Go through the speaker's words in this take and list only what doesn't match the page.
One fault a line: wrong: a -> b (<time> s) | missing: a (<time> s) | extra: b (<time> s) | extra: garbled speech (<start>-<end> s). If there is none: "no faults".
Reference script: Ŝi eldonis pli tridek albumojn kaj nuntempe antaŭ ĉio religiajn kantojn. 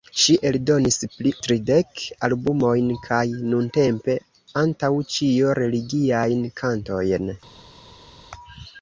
no faults